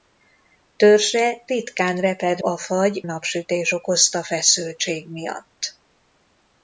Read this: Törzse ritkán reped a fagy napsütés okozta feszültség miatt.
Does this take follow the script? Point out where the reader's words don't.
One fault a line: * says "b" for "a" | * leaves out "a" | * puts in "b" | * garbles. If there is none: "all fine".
all fine